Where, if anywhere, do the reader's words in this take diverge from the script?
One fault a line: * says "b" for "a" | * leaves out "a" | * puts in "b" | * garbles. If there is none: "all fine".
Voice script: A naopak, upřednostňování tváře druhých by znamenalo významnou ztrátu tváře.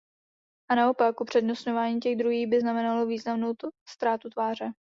* says "těch" for "tváře"